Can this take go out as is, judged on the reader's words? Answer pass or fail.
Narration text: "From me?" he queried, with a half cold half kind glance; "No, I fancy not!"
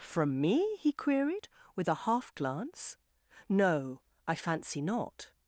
fail